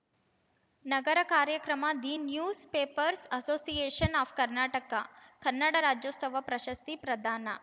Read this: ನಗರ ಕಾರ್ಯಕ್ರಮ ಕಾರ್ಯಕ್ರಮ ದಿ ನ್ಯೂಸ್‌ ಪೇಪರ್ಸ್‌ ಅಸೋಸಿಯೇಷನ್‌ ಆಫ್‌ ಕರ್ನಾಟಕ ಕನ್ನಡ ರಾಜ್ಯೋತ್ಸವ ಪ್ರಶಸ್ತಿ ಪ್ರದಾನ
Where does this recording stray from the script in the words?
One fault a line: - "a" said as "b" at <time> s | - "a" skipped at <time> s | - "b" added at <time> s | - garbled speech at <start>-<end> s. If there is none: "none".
- "ಕಾರ್ಯಕ್ರಮ" skipped at 1.9 s